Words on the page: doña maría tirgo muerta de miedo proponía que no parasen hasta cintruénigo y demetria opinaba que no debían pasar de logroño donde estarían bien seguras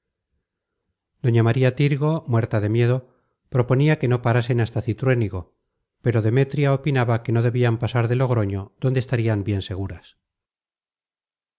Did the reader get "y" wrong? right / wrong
wrong